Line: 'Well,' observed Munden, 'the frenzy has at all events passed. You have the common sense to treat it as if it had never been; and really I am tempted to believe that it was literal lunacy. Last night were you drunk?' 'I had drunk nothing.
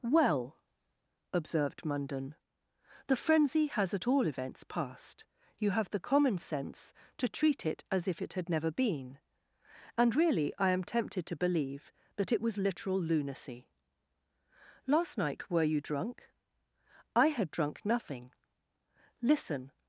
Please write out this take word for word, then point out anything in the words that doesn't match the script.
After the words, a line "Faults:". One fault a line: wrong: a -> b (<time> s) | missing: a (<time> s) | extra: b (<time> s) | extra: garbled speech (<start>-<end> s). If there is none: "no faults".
'Well,' observed Munden, 'the frenzy has at all events passed. You have the common sense to treat it as if it had never been; and really I am tempted to believe that it was literal lunacy. Last night were you drunk?' 'I had drunk nothing. Listen
Faults:
extra: Listen (19.2 s)